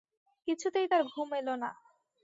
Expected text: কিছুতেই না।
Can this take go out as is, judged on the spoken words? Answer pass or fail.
fail